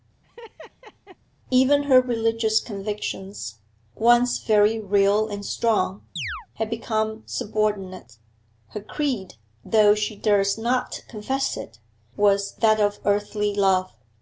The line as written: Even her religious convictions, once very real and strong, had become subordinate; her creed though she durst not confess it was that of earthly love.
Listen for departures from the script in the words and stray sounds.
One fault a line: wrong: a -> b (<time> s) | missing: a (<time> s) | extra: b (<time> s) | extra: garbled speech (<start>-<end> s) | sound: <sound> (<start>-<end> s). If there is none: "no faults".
sound: laugh (0.2-1.2 s)
sound: chirp (6.2-6.5 s)